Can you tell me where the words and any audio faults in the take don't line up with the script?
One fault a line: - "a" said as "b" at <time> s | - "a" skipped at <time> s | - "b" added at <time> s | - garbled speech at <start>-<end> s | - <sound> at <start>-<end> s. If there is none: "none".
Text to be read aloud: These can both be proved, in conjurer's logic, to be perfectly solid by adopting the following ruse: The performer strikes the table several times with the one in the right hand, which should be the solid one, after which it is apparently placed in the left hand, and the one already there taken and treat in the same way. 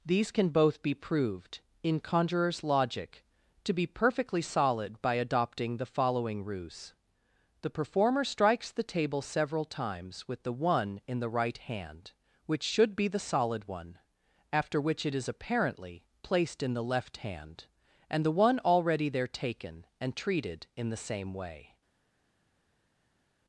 - "treat" said as "treated" at 20.2 s